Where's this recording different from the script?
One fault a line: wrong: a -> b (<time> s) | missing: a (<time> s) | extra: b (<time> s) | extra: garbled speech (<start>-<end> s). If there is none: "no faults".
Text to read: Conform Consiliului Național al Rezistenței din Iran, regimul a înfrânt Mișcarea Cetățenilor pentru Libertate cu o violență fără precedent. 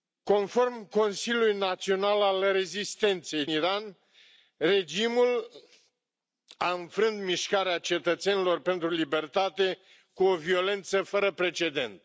missing: din (3.5 s)